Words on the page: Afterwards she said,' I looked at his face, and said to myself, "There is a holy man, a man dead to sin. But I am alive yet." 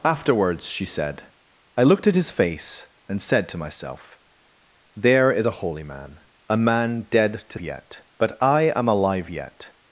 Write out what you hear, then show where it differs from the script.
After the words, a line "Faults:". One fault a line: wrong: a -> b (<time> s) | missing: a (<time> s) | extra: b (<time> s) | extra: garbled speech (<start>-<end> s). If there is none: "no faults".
Afterwards she said,' I looked at his face, and said to myself, "There is a holy man, a man dead to yet. But I am alive yet."
Faults:
wrong: sin -> yet (7.6 s)